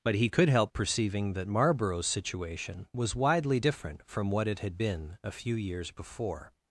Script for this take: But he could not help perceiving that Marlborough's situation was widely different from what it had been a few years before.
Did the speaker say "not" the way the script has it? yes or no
no